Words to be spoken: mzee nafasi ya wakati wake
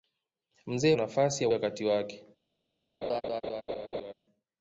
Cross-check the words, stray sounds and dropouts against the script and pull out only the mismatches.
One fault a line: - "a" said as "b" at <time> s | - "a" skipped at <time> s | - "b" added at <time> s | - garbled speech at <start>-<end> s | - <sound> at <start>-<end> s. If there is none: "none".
- laugh at 3.0-4.1 s